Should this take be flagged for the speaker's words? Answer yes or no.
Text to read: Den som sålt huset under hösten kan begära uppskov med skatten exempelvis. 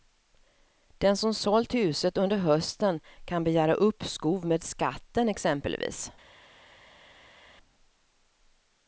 no